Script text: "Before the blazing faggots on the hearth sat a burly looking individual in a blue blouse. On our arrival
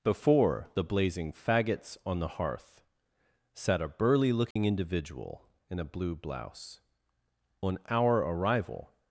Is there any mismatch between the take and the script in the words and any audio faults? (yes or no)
yes